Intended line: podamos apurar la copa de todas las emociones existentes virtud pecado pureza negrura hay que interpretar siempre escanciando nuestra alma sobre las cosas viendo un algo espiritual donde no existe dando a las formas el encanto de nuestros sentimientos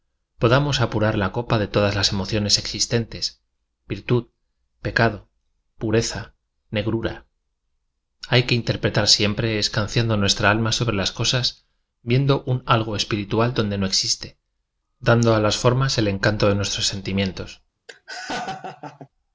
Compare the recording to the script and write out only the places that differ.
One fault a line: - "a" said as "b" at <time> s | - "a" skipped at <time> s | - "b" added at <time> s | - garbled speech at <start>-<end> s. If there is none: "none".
none